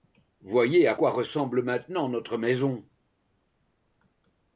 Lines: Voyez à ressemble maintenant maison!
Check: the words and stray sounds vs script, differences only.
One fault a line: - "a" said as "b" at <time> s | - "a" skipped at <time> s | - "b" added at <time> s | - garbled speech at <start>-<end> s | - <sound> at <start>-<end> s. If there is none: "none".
- "quoi" added at 0.9 s
- "notre" added at 2.1 s